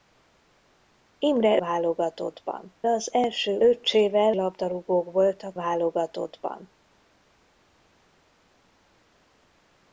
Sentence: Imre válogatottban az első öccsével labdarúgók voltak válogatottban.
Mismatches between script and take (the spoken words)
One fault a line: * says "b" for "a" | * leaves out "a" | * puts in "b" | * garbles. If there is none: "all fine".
all fine